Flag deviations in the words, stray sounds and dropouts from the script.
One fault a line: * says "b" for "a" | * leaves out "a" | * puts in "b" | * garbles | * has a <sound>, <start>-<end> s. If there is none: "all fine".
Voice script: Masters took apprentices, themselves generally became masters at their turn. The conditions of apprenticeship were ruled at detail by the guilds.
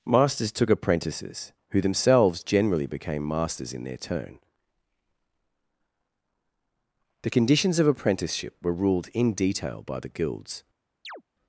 * puts in "who"
* says "in" for "at"
* says "in" for "at"
* has a chirp, 11.0-11.2 s